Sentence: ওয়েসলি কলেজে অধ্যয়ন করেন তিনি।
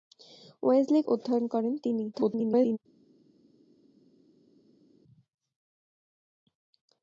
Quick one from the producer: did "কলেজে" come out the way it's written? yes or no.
no